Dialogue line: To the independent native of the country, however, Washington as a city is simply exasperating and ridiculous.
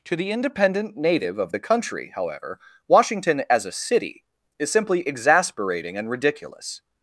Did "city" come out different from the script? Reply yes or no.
no